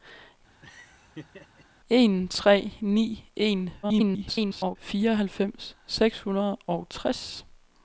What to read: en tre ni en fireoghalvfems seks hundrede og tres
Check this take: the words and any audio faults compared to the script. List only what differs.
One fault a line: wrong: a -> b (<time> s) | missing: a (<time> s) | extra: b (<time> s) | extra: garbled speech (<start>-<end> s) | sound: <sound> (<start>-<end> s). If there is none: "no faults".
sound: laugh (0.6-1.7 s)
extra: garbled speech (3.8-4.8 s)